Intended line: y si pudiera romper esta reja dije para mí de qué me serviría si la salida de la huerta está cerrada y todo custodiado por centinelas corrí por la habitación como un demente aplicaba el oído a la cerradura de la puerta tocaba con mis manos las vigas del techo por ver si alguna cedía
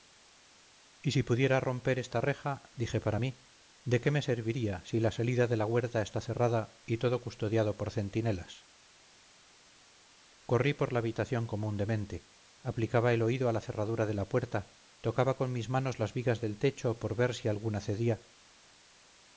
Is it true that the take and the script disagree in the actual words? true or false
false